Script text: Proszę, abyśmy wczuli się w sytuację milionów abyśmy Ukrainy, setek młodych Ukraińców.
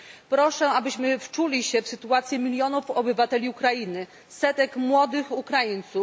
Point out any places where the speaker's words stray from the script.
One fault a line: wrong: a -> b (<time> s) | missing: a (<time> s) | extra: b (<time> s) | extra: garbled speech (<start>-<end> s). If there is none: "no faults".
wrong: abyśmy -> obywateli (2.9 s)